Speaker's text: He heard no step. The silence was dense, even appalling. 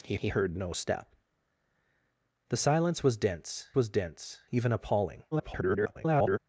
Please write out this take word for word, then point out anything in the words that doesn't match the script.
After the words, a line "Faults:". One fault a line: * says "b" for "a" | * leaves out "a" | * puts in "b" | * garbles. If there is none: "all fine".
He he heard no step. The silence was dense was dense, even appalling. [garbled]
Faults:
* puts in "he"
* puts in "was dense"
* garbles